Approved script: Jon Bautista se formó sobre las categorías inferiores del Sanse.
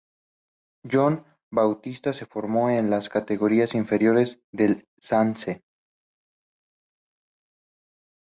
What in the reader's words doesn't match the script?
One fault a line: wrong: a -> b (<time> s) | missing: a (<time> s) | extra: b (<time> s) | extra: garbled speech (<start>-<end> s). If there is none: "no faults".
wrong: sobre -> en (2.7 s)